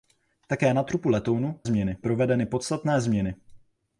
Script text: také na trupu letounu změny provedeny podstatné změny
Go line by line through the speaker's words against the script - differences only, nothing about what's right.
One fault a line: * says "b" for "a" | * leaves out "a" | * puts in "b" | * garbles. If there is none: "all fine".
all fine